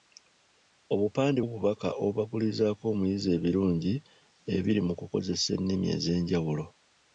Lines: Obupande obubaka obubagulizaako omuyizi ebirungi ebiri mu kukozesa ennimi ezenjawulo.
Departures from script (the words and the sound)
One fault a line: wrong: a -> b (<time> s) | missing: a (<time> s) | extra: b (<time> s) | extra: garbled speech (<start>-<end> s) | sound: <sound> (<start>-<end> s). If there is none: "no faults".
no faults